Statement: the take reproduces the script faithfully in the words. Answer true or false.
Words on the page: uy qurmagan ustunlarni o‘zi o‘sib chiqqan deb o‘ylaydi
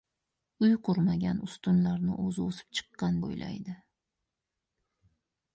false